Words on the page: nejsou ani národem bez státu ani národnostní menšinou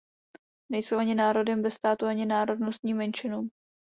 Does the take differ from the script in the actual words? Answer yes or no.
no